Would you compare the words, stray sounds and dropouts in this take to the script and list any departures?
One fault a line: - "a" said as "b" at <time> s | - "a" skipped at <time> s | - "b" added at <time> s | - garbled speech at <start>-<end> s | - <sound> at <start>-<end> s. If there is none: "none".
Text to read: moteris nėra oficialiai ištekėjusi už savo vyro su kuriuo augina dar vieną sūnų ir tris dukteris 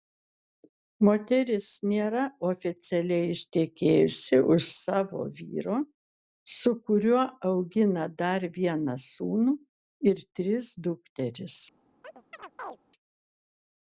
- chirp at 12.0-12.8 s